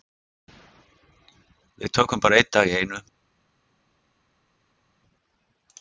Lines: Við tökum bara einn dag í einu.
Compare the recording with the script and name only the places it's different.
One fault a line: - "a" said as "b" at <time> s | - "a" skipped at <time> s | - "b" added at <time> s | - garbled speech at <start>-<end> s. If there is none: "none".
none